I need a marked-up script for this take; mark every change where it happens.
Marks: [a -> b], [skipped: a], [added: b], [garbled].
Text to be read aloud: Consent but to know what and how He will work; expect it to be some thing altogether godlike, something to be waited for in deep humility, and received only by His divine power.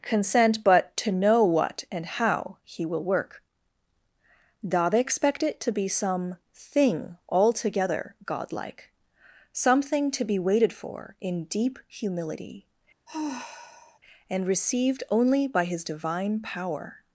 Consent but to know what and how He will work; [added: da they] expect it to be some thing altogether godlike, something to be waited for in deep humility, and received only by His divine power.